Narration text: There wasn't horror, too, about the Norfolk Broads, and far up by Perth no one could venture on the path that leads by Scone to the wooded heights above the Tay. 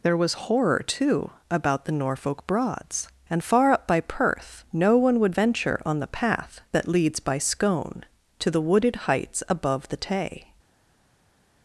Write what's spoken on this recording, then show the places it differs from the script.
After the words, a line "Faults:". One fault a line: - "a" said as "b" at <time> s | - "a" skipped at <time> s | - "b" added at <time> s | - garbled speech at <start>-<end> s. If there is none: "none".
There was horror, too, about the Norfolk Broads, and far up by Perth no one would venture on the path that leads by Scone to the wooded heights above the Tay.
Faults:
- "wasn't" said as "was" at 0.2 s
- "could" said as "would" at 5.2 s